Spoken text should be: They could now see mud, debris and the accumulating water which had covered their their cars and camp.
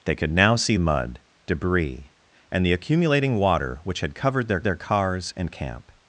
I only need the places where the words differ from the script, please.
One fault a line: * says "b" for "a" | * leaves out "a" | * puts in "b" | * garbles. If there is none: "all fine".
all fine